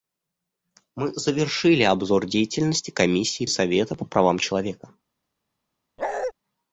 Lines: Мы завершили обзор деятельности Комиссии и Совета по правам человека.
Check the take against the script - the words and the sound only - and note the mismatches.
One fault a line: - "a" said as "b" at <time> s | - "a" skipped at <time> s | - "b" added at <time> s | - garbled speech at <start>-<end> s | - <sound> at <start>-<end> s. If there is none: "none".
- bark at 6.0-6.3 s